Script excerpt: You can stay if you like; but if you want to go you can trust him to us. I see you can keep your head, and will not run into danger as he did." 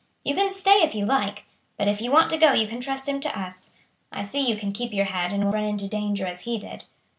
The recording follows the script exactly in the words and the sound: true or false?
false